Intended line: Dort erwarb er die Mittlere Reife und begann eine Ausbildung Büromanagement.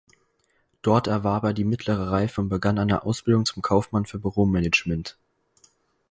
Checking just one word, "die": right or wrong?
right